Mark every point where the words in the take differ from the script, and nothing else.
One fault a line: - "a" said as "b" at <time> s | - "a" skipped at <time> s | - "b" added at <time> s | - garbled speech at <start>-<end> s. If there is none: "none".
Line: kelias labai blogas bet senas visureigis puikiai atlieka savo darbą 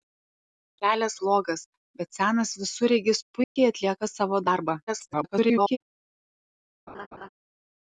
- "labai" skipped at 1.2 s
- garbled speech at 4.9-5.8 s